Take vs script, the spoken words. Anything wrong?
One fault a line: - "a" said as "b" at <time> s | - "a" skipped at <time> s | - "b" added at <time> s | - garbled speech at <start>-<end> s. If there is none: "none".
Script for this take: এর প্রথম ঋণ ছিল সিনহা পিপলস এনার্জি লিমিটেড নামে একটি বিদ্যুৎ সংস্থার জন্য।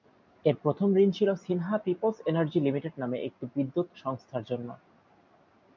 none